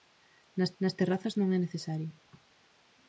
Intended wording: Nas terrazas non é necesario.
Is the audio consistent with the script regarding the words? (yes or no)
no